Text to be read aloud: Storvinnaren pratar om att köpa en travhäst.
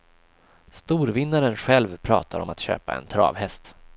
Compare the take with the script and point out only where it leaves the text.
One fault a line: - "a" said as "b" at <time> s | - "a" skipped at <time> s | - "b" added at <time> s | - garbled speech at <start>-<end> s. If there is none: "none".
- "själv" added at 1.6 s